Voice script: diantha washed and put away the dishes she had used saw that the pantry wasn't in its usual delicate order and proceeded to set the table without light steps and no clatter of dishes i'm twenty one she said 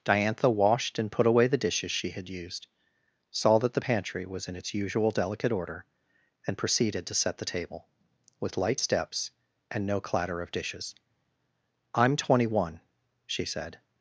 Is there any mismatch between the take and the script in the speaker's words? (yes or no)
yes